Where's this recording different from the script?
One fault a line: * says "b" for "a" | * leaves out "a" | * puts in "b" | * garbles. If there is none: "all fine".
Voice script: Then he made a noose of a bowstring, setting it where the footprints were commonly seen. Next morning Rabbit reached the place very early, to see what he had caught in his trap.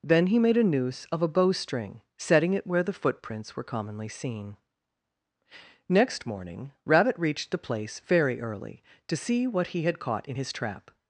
all fine